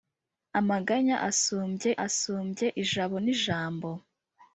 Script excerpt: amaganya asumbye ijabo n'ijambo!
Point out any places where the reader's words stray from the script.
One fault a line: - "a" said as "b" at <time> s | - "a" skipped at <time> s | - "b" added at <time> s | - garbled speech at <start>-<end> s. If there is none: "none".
- "asumbye" added at 2.1 s